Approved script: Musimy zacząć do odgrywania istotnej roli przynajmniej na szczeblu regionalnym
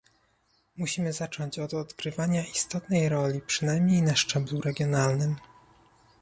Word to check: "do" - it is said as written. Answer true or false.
false